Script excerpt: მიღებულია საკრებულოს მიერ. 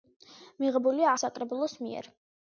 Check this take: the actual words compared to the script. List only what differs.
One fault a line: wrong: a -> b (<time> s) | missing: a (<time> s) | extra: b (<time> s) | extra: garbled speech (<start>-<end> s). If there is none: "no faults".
no faults